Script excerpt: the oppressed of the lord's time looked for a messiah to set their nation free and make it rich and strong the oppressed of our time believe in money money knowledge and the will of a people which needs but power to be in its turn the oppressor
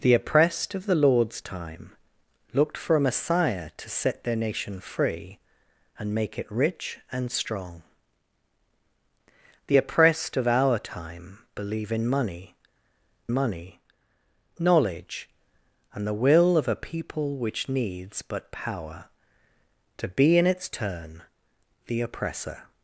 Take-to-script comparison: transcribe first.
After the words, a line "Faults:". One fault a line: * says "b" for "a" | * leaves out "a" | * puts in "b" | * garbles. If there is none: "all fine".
the oppressed of the lord's time looked for a messiah to set their nation free and make it rich and strong the oppressed of our time believe in money money knowledge and the will of a people which needs but power to be in its turn the oppressor
Faults:
all fine